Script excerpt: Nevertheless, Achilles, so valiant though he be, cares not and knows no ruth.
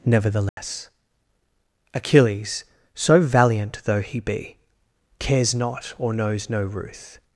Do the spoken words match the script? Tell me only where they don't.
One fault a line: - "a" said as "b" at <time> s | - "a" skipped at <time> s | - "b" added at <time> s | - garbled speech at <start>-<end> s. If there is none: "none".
- "and" said as "or" at 6.0 s